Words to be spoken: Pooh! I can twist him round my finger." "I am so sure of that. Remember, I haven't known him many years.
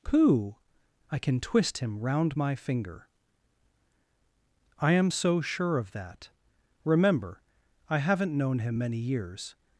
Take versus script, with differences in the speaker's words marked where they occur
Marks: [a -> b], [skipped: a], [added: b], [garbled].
Pooh! I can twist him round my finger." "I am so sure of that. Remember, I haven't known him many years.